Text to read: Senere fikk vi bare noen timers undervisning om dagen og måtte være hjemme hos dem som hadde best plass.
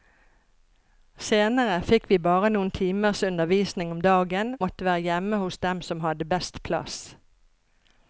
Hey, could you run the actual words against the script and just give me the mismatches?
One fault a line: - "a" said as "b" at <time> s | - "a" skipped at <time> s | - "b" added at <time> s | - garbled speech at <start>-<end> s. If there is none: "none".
- "og" skipped at 4.5 s